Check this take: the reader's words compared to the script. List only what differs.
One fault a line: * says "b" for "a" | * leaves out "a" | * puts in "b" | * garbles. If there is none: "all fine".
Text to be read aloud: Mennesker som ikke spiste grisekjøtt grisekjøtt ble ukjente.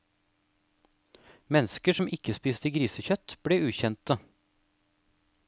* leaves out "grisekjøtt"